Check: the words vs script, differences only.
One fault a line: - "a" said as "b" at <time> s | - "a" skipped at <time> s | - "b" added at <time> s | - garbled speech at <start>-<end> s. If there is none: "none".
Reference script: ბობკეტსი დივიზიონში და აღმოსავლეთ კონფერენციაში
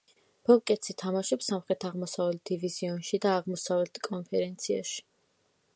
- "თამაშობს სამხრეთ აღმოსავლეთ" added at 1.0 s